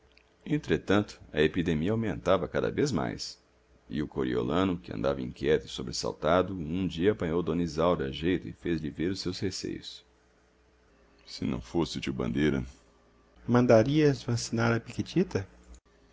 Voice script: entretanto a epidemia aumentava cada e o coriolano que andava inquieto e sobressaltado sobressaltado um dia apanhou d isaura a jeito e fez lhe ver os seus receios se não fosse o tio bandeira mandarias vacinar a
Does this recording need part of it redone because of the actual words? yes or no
yes